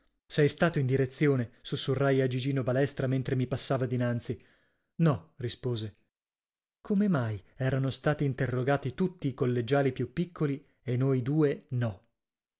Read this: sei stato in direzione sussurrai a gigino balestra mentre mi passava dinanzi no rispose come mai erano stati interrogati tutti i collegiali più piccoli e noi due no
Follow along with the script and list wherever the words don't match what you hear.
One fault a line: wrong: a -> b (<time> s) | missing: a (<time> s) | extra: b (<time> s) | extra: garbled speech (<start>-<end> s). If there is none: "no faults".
no faults